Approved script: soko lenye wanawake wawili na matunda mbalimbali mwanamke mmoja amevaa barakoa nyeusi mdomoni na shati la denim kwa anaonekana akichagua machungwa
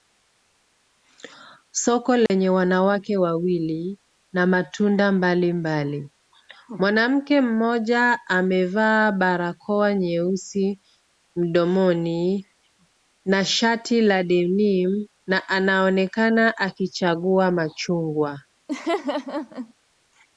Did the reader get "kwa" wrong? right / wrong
wrong